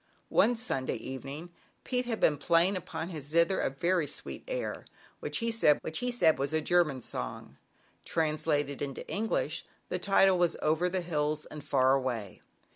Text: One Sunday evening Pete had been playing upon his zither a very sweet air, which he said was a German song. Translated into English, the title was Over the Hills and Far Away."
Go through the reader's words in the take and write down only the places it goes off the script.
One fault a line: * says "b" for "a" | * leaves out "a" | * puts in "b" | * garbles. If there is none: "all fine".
* puts in "which he said"